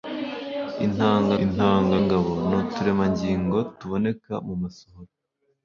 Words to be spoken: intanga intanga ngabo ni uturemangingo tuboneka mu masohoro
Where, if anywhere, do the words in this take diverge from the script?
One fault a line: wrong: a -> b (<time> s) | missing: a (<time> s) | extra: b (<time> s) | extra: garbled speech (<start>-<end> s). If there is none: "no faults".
no faults